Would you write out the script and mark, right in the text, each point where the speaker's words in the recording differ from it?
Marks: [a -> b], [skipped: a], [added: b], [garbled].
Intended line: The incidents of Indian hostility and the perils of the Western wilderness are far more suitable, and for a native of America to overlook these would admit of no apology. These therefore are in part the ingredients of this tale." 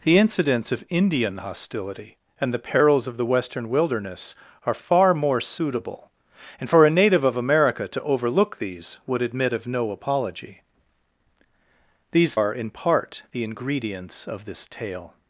The incidents of Indian hostility and the perils of the Western wilderness are far more suitable, and for a native of America to overlook these would admit of no apology. These [skipped: therefore] are in part the ingredients of this tale."